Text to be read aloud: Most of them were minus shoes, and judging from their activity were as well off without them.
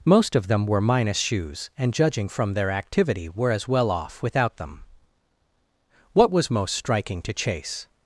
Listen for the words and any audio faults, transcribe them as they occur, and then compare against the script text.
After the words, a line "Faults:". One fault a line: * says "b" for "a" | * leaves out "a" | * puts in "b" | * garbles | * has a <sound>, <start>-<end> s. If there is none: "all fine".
Most of them were minus shoes, and judging from their activity were as well off without them. What was most striking to Chase
Faults:
* puts in "What was most striking to Chase"